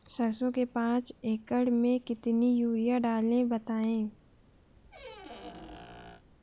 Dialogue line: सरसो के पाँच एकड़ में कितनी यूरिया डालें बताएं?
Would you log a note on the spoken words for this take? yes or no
no